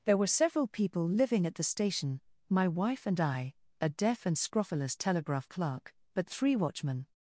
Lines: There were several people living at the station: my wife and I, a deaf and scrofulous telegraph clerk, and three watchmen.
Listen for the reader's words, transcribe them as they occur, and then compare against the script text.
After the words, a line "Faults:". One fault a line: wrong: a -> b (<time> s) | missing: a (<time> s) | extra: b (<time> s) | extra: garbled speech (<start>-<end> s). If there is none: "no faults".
There were several people living at the station: my wife and I, a deaf and scrofulous telegraph clerk, but three watchmen.
Faults:
wrong: and -> but (6.1 s)